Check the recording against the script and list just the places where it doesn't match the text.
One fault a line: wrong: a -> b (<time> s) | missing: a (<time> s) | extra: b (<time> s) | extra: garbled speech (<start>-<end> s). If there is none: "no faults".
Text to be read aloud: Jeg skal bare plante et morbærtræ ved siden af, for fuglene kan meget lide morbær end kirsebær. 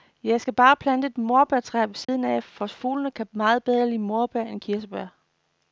extra: bedre (3.6 s)